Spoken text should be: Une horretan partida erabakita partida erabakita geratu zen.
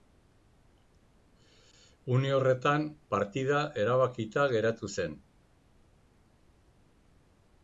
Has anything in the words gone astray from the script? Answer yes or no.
yes